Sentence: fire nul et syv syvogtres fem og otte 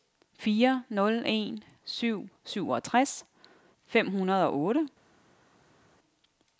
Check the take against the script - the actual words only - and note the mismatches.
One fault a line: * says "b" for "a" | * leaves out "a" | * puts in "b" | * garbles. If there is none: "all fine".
* says "en" for "et"
* puts in "hundrede"